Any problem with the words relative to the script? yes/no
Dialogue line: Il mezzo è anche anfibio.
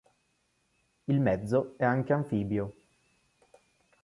no